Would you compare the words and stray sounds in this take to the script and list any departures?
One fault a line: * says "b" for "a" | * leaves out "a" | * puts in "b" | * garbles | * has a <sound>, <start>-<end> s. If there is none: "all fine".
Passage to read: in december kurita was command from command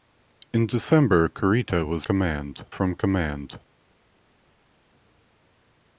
all fine